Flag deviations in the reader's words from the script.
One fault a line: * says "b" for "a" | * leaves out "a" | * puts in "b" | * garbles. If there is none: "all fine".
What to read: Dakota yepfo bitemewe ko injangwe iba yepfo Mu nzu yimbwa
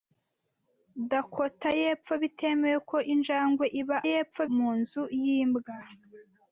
all fine